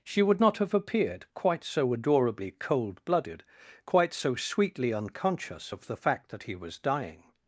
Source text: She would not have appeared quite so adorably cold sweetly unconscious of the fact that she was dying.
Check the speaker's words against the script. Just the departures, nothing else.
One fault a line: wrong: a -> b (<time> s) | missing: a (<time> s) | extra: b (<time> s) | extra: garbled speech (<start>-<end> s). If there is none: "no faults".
extra: blooded quite so (3.0 s)
wrong: she -> he (6.4 s)